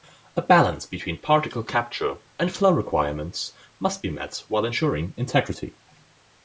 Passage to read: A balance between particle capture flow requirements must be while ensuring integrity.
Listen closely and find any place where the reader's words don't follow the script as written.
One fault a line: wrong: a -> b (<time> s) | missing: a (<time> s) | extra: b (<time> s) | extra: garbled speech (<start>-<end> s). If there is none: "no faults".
extra: and (2.4 s)
extra: met (4.1 s)